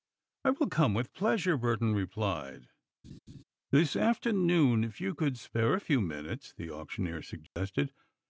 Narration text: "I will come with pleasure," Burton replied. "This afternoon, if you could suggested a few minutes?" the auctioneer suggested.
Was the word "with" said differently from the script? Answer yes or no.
no